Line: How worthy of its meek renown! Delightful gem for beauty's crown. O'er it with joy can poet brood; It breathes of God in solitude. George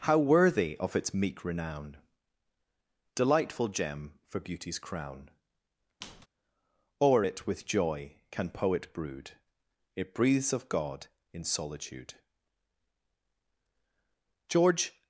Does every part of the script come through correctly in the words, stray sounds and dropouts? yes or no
no